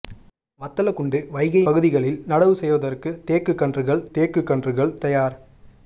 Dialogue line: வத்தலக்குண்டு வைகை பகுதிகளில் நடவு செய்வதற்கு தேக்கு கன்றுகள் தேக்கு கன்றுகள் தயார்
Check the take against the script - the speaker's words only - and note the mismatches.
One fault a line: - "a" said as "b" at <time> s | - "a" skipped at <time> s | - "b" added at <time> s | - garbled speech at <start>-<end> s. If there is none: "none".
none